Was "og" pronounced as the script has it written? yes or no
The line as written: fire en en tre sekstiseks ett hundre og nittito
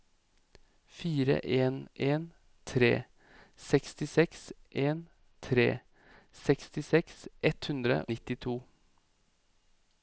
no